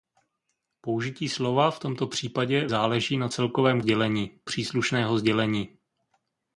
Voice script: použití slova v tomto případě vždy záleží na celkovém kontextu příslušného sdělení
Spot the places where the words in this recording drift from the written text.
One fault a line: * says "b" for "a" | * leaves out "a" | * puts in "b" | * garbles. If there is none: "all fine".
* leaves out "vždy"
* says "sdělení" for "kontextu"